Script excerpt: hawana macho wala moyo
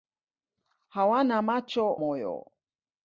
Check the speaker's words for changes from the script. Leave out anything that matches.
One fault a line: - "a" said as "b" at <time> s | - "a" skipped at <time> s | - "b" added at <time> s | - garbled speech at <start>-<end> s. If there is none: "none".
- "wala" skipped at 1.9 s